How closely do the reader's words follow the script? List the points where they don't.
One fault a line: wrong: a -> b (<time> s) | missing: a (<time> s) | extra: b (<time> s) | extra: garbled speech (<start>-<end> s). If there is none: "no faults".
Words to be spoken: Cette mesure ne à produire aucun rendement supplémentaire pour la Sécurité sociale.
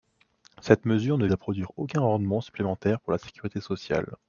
no faults